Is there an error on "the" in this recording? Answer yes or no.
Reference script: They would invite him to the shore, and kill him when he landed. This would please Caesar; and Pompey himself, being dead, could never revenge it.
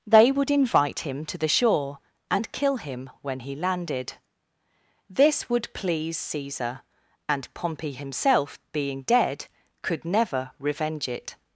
no